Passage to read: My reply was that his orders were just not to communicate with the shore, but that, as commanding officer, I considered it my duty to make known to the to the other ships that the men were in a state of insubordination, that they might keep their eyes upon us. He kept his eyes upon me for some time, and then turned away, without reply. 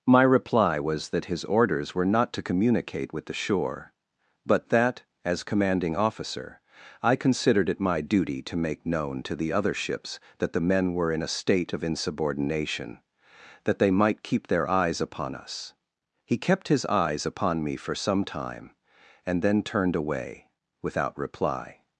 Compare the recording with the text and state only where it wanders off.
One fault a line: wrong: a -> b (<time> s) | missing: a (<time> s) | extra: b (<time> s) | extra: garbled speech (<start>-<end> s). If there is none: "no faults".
missing: just (2.1 s)
missing: to the (9.5 s)